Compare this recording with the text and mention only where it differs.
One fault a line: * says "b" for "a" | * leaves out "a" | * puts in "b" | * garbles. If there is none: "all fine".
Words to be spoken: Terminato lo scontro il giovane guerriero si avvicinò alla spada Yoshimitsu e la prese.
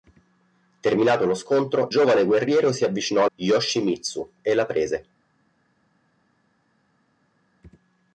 * leaves out "il"
* leaves out "alla spada"